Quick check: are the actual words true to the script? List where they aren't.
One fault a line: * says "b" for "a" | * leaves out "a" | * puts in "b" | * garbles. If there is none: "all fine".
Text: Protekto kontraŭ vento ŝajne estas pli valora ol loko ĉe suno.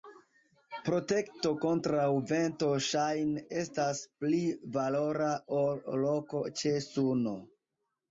all fine